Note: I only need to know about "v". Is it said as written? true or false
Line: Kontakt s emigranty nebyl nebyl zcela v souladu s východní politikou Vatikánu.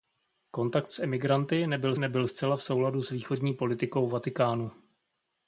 true